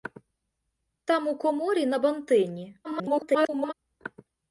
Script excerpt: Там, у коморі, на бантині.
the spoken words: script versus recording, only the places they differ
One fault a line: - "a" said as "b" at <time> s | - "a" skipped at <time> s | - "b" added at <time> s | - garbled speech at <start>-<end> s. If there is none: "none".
- garbled speech at 2.8-3.7 s